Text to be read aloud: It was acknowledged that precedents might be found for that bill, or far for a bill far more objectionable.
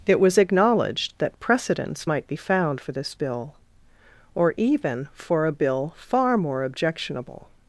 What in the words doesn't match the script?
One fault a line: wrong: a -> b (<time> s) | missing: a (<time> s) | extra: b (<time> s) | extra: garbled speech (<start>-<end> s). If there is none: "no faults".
wrong: that -> this (2.9 s)
wrong: far -> even (4.6 s)